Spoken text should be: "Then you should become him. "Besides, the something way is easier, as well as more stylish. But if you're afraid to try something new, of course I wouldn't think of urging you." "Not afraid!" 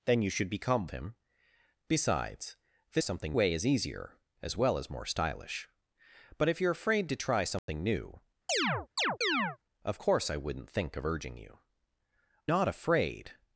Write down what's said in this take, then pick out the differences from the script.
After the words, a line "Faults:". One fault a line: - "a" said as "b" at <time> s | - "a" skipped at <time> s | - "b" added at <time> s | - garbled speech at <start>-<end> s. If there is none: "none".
"Then you should become him. "Besides, the something way is easier, as well as more stylish. But if you're afraid to try something new, of course I wouldn't think of urging you." "Not afraid!"
Faults:
none